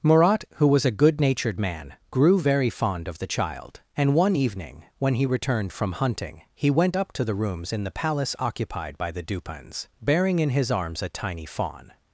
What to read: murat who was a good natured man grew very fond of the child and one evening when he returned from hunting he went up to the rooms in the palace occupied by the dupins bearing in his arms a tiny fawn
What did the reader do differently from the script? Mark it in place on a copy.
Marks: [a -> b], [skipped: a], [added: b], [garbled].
murat who was a good natured man grew very fond of the child and one evening when he returned from hunting he went up to the rooms in the palace occupied by the dupins bearing in his arms a tiny fawn